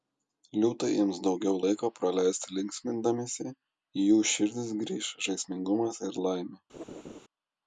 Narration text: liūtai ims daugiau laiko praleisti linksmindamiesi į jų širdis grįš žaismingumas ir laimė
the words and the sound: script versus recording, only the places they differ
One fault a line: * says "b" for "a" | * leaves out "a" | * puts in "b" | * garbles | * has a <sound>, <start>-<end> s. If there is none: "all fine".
* has a laugh, 6.7-7.2 s